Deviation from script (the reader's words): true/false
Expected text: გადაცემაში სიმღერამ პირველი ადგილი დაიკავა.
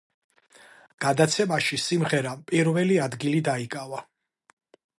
false